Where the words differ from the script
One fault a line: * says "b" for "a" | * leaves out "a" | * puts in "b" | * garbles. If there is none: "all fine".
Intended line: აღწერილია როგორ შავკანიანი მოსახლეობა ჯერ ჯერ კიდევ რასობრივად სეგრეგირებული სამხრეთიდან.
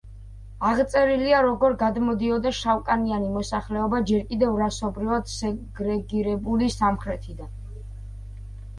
* puts in "გადმოდიოდა"
* leaves out "ჯერ"